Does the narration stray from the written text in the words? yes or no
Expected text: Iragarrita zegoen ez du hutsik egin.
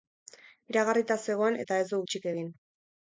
yes